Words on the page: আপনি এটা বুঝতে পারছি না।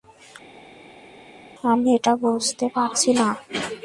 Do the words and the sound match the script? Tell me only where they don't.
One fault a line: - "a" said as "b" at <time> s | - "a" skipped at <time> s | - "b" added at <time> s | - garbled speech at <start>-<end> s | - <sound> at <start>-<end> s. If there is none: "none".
- "আপনি" said as "আমি" at 1.6 s